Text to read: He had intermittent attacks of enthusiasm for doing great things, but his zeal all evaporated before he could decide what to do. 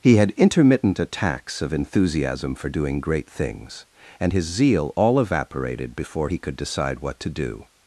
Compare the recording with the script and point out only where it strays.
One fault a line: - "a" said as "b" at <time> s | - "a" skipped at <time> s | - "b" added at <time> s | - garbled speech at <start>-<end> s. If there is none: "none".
- "but" said as "and" at 4.2 s